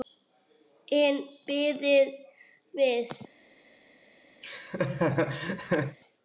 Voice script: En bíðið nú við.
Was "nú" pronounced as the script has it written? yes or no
no